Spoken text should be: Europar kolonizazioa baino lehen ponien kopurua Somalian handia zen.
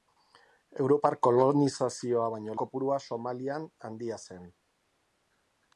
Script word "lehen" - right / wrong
wrong